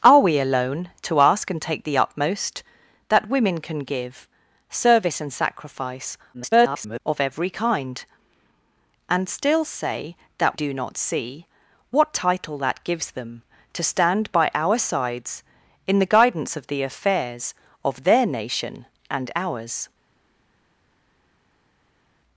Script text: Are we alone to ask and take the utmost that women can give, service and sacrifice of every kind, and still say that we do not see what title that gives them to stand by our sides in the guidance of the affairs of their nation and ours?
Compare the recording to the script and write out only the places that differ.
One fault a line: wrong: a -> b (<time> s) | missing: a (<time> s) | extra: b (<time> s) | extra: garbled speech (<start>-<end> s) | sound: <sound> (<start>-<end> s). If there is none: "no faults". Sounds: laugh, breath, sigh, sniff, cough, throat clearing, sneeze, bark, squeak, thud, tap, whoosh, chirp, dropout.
extra: garbled speech (6.3-7.0 s)
missing: we (10.6 s)